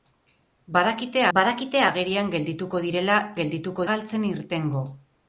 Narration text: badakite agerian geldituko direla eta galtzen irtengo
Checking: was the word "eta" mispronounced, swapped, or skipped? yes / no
yes